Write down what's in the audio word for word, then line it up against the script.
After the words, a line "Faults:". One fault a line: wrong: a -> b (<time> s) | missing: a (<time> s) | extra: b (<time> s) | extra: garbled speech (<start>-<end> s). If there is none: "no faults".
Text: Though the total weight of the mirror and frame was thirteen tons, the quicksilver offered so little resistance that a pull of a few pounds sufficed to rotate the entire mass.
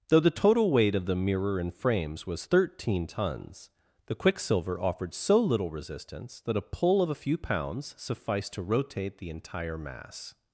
Though the total weight of the mirror and frames was thirteen tons, the quicksilver offered so little resistance that a pull of a few pounds sufficed to rotate the entire mass.
Faults:
wrong: frame -> frames (1.7 s)